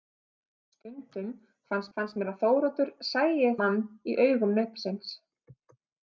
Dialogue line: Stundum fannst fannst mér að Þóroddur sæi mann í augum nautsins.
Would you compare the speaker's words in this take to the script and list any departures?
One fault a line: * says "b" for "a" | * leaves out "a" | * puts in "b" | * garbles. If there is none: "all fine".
all fine